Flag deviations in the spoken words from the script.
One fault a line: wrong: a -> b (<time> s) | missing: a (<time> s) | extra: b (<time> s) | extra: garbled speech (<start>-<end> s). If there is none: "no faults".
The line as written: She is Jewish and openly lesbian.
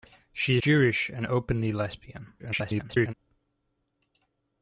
missing: is (0.6 s)
extra: garbled speech (2.4-3.1 s)